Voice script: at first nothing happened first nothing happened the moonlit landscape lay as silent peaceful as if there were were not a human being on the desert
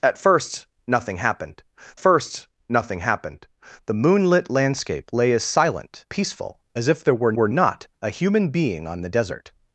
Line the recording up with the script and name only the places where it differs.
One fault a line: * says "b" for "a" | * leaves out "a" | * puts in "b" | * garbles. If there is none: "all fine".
all fine